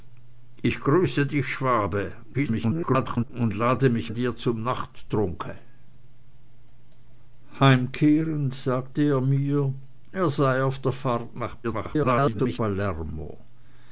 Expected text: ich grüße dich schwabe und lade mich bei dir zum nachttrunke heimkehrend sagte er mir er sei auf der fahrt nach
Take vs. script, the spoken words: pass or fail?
fail